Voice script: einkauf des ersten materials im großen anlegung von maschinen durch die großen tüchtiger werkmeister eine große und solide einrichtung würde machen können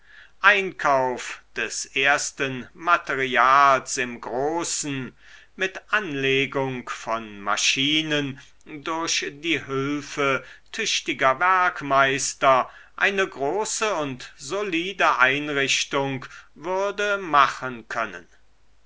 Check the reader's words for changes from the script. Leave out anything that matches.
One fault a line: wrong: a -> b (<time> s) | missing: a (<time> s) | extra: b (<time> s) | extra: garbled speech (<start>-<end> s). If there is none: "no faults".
extra: mit (5.5 s)
wrong: großen -> hülfe (9.7 s)